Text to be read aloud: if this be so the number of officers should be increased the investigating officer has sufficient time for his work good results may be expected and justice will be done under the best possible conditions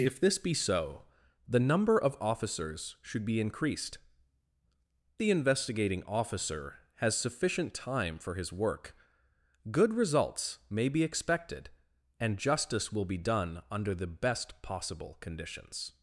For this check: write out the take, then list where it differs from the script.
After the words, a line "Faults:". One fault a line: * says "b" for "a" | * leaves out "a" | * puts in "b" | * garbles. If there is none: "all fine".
if this be so the number of officers should be increased the investigating officer has sufficient time for his work good results may be expected and justice will be done under the best possible conditions
Faults:
all fine